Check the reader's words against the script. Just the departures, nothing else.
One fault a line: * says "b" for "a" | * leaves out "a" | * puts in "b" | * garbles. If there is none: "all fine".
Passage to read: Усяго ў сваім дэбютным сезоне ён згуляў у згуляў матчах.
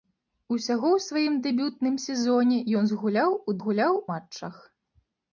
all fine